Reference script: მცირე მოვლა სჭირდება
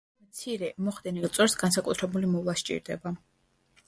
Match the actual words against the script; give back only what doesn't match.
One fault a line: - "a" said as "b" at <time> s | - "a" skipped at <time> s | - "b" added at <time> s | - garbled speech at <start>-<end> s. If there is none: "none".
- "მოხდენილ წვერს განსაკუთრებული" added at 0.8 s